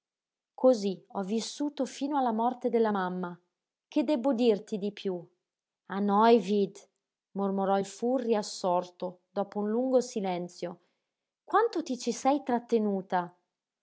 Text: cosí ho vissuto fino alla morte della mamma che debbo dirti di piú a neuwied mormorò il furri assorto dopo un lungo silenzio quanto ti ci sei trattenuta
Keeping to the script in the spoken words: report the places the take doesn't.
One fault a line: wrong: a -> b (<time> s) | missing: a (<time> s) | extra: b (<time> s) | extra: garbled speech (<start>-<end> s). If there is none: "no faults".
no faults